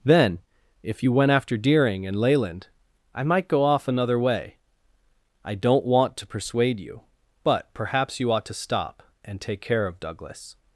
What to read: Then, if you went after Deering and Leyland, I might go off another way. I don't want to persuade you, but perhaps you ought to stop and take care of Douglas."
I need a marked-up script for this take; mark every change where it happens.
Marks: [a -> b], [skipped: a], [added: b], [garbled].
Then, if you went after Deering and Leyland, I might go off another way. I don't want to persuade you, but perhaps you ought to stop and take care of Douglas."